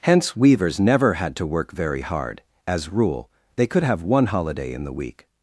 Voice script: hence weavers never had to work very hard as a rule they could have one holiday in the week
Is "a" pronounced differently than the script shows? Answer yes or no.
yes